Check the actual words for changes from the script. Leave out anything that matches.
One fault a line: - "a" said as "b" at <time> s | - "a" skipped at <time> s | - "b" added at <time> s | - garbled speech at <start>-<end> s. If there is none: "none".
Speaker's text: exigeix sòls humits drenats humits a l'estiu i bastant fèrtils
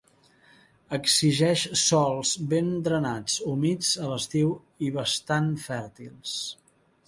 - "humits" said as "ben" at 2.5 s